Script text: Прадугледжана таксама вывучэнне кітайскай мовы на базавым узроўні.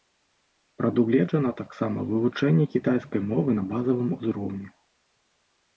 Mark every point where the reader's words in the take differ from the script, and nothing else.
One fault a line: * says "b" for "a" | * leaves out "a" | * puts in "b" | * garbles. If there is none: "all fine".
all fine